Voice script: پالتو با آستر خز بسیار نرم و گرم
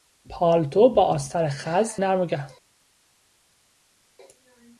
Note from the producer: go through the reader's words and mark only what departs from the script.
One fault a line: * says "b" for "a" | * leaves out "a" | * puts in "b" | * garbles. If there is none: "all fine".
* leaves out "بسیار"